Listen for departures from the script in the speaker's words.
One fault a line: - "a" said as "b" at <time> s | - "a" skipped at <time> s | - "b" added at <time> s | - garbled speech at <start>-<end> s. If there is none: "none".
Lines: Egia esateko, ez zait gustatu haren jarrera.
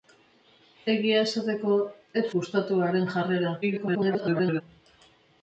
- "zait" skipped at 2.2 s
- garbled speech at 3.6-4.6 s